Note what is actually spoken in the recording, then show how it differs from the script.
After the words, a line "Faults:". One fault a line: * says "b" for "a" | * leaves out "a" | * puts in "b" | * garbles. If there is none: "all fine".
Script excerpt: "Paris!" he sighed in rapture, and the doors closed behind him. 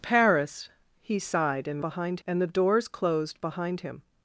"Paris!" he sighed in behind, and the doors closed behind him.
Faults:
* says "behind" for "rapture"